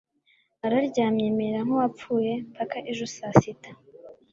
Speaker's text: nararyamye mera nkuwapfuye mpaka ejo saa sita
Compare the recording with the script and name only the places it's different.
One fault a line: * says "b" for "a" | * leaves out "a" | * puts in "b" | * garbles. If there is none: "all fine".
all fine